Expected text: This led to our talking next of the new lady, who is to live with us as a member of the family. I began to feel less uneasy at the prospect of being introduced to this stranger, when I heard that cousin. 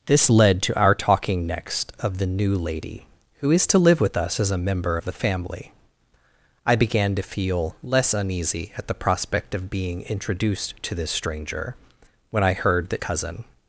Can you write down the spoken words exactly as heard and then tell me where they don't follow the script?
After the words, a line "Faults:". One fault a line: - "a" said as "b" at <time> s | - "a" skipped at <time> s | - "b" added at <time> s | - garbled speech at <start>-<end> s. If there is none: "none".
This led to our talking next of the new lady, who is to live with us as a member of the family. I began to feel less uneasy at the prospect of being introduced to this stranger, when I heard that cousin.
Faults:
none